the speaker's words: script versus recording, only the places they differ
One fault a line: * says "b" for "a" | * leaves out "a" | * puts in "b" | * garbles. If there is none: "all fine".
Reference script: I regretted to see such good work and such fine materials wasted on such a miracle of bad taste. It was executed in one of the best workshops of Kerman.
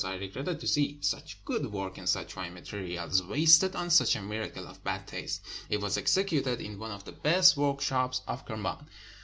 all fine